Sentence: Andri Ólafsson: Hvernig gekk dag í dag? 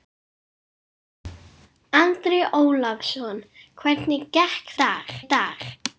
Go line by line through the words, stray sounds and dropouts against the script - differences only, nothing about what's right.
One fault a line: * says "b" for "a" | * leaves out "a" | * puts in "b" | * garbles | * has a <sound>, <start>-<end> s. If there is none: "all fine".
all fine